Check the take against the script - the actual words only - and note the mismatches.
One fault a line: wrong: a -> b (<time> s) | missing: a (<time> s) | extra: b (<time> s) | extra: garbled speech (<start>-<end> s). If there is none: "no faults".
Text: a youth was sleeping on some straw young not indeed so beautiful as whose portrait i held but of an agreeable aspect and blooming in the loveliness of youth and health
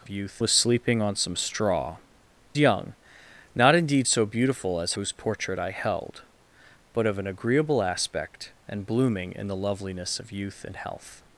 no faults